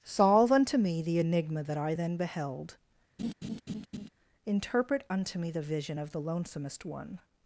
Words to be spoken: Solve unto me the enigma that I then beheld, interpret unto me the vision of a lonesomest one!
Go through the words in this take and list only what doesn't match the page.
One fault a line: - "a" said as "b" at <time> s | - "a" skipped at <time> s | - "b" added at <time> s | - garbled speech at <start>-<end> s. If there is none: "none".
- "a" said as "the" at 6.1 s